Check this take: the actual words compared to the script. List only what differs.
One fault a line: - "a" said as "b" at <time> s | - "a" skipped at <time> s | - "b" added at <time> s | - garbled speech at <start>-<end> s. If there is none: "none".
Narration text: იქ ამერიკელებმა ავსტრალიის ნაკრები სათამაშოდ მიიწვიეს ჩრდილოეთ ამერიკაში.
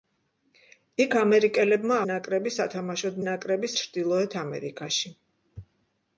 - "ავსტრალიის" skipped at 2.0 s
- "მიიწვიეს" said as "ნაკრები" at 3.3 s